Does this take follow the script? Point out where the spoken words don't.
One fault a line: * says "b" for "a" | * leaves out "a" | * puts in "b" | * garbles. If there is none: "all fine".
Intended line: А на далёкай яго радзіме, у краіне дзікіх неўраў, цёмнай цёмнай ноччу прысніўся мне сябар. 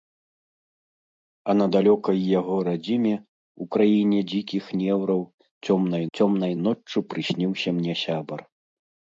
all fine